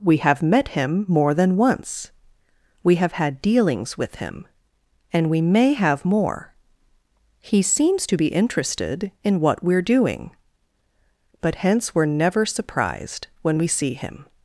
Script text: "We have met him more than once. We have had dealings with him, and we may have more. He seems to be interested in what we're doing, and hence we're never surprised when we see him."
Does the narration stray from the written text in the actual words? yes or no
yes